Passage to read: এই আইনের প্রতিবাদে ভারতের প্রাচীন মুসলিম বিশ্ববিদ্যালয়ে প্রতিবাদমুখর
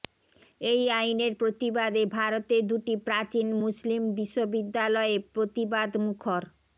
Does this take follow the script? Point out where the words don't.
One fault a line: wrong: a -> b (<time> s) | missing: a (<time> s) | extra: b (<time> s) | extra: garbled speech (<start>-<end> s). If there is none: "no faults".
extra: দুটি (2.7 s)